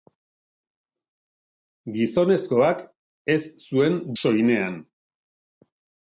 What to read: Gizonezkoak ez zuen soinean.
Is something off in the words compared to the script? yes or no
no